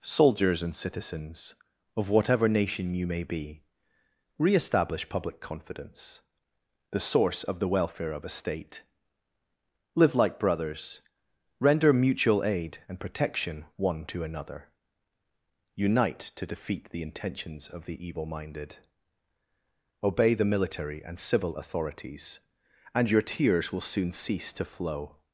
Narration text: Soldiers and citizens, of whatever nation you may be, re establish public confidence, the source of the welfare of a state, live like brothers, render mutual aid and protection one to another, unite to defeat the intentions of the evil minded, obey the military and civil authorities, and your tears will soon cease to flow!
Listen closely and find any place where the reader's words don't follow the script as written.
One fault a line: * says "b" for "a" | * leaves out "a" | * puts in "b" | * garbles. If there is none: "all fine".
all fine